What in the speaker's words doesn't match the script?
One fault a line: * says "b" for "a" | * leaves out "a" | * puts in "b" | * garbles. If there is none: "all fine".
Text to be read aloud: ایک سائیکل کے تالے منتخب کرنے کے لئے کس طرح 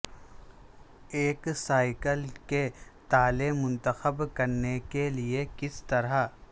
all fine